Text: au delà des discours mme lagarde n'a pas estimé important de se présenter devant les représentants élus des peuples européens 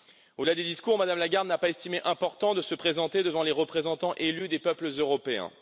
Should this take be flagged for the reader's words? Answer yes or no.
no